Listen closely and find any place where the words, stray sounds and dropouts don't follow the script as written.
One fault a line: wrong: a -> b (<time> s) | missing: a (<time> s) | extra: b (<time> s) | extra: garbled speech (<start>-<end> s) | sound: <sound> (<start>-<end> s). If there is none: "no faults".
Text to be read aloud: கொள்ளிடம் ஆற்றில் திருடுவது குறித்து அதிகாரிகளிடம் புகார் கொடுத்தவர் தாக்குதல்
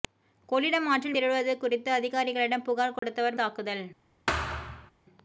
sound: dropout (3.0-3.0 s)
sound: thud (4.3-4.9 s)